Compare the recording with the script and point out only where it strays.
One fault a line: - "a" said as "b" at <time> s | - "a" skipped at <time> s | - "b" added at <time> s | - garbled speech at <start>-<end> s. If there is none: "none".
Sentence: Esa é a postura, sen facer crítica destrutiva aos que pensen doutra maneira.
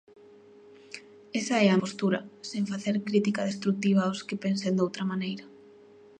none